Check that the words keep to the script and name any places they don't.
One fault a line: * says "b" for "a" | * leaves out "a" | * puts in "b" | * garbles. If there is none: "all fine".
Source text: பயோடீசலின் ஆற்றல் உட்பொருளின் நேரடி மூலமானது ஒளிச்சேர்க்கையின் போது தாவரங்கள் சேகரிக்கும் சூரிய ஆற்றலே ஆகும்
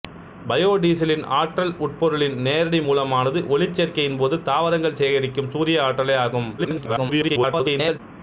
* garbles